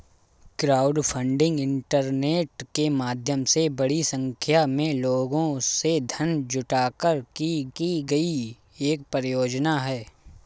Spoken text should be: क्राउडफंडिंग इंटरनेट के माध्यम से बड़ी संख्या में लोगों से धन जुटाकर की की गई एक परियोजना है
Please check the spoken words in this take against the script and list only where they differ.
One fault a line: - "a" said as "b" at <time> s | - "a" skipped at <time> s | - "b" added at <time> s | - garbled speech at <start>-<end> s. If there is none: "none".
none